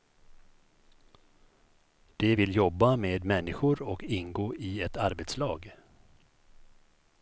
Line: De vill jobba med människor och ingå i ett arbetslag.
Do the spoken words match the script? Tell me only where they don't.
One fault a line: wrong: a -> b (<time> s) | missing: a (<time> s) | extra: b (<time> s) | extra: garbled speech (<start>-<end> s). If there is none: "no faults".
no faults